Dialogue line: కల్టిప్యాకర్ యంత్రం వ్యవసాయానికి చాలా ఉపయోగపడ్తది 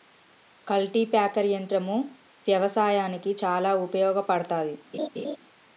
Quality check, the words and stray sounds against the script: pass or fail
fail